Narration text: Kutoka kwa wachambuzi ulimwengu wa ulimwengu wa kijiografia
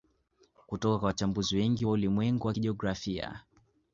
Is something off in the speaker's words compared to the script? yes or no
yes